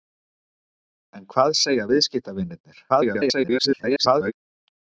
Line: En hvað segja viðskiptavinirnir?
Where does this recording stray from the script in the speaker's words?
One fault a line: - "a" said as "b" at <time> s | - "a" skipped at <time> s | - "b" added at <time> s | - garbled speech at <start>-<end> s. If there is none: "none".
- garbled speech at 2.9-4.3 s